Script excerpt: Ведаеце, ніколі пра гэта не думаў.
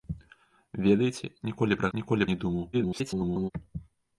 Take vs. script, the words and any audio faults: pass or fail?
fail